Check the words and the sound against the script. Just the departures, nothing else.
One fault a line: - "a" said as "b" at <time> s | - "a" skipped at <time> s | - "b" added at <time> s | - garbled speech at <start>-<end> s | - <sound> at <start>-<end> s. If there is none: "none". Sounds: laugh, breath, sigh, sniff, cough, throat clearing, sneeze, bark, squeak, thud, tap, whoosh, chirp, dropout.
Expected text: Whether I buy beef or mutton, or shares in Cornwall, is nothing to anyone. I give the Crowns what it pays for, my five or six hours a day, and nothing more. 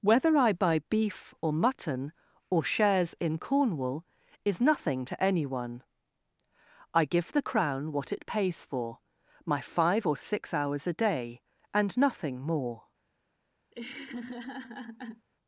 - "Crowns" said as "Crown" at 7.4 s
- laugh at 13.7-15.3 s